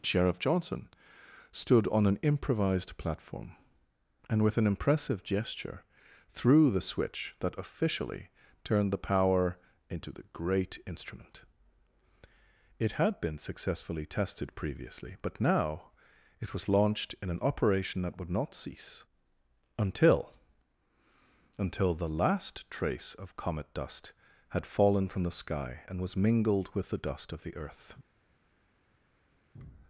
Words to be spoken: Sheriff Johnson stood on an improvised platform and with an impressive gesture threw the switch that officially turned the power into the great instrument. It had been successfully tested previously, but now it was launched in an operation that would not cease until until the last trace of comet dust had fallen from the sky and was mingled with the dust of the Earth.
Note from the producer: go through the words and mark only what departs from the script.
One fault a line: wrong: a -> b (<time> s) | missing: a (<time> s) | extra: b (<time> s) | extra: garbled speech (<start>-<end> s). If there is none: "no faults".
no faults